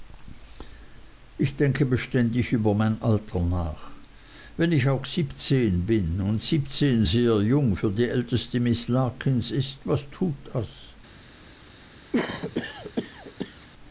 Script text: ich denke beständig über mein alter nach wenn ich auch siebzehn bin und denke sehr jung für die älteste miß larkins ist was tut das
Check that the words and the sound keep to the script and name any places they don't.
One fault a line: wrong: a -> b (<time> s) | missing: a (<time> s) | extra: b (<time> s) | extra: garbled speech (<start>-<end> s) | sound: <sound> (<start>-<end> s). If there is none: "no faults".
wrong: denke -> siebzehn (6.4 s)
sound: cough (12.1-13.7 s)